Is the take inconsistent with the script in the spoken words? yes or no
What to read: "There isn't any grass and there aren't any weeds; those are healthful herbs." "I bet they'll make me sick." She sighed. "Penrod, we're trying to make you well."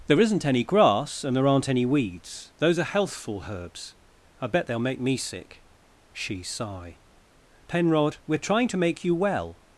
yes